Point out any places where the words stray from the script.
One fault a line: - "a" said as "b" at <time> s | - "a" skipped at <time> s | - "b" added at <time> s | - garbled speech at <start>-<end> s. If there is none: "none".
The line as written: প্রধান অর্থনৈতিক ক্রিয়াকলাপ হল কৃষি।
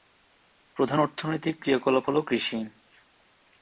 none